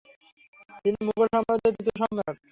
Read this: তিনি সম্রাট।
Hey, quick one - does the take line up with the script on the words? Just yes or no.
no